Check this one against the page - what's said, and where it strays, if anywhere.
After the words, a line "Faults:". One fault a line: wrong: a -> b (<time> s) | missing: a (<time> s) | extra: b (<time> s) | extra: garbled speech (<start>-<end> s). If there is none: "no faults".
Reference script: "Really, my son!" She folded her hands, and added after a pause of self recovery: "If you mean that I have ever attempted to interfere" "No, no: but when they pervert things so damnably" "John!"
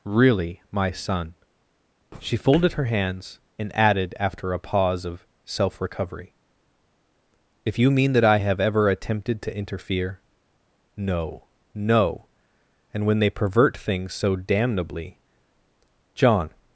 "Really, my son!" She folded her hands, and added after a pause of self recovery: "If you mean that I have ever attempted to interfere" "No, no: and when they pervert things so damnably" "John!"
Faults:
wrong: but -> and (12.9 s)